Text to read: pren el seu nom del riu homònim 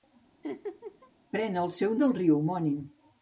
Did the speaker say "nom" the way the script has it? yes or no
no